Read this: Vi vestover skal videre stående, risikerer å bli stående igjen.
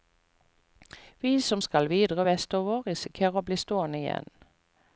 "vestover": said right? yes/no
no